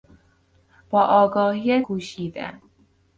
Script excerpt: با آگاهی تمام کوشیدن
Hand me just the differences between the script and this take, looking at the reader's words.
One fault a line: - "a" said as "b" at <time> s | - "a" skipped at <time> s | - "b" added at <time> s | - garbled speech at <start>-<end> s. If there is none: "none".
- "تمام" skipped at 1.8 s